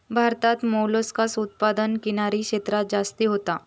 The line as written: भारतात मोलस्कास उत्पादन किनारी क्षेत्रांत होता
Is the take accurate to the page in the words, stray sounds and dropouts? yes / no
no